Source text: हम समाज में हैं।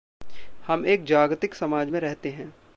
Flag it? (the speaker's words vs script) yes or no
yes